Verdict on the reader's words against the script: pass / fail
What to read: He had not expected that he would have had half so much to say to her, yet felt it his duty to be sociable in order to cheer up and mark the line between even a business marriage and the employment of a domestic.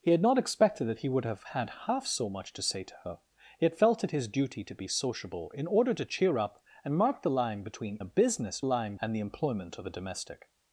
fail